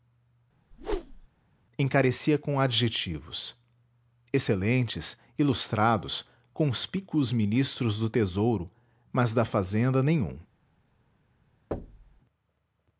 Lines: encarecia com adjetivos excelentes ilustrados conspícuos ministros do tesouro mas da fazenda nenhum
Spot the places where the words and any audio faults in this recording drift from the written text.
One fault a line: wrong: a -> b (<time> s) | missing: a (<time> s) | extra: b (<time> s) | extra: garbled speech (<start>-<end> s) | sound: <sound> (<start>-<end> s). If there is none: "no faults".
sound: whoosh (0.7-1.3 s)
sound: thud (11.7-12.2 s)